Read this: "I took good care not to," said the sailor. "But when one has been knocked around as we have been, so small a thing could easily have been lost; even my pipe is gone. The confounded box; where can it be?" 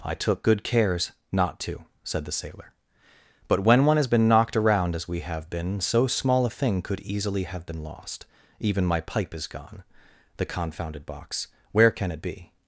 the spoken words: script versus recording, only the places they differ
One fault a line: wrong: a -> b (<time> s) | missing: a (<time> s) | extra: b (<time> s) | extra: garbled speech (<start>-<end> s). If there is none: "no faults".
wrong: care -> cares (0.6 s)